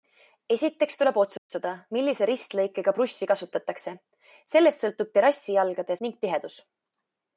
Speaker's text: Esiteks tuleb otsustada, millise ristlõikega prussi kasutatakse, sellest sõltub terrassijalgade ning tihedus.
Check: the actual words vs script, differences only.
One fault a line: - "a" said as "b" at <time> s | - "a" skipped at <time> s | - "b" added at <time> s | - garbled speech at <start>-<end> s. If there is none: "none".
none